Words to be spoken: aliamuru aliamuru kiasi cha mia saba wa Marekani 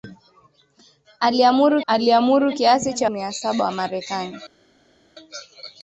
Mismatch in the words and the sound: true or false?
false